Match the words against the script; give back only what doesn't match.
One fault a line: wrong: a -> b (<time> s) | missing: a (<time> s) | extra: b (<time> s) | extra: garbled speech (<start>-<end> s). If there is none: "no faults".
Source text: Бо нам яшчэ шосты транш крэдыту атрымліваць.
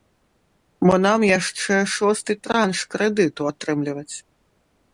no faults